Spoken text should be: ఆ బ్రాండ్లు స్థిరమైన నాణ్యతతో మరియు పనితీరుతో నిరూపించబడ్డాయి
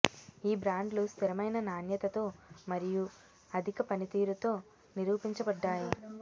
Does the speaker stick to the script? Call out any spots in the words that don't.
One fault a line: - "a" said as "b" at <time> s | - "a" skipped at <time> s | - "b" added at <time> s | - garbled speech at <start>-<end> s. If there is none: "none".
- "ఆ" said as "ఈ" at 0.4 s
- "అధిక" added at 3.5 s